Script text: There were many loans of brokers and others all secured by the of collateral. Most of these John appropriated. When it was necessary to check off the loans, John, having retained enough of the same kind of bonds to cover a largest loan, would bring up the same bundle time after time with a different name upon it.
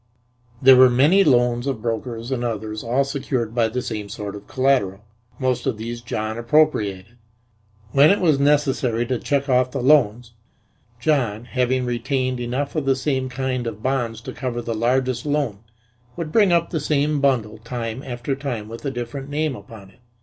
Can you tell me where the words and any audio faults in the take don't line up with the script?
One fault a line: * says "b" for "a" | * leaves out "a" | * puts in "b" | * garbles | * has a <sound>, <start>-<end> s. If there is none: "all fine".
* puts in "same sort"
* says "the" for "a"